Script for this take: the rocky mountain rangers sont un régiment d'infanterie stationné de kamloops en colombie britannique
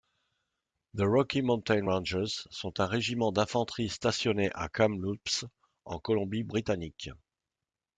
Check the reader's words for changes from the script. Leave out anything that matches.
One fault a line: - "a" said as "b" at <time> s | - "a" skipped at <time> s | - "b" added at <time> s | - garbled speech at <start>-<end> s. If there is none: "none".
- "de" said as "à" at 4.5 s